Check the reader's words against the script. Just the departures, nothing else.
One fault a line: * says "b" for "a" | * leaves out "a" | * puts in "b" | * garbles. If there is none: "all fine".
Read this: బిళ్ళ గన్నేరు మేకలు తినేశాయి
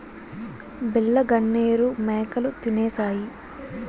all fine